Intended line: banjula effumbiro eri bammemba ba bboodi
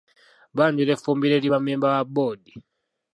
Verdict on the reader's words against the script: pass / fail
pass